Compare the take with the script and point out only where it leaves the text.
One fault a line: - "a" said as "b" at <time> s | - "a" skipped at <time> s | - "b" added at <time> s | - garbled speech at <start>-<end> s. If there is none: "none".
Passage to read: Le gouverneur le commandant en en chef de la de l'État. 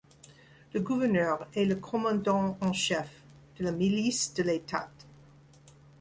- "est" added at 1.5 s
- "en" skipped at 2.7 s
- "milice" added at 3.7 s